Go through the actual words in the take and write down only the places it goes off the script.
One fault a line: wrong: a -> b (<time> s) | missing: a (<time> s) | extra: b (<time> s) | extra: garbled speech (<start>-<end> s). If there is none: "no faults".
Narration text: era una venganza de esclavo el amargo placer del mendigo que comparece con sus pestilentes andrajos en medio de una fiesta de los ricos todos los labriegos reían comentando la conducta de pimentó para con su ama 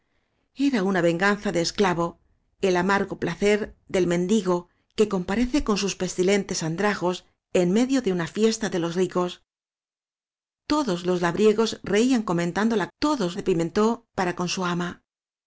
wrong: conducta -> todos (13.0 s)